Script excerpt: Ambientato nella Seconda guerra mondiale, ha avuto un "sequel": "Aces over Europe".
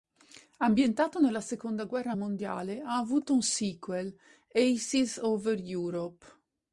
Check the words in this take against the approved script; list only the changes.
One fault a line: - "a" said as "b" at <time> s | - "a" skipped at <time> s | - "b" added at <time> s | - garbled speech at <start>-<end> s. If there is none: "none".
none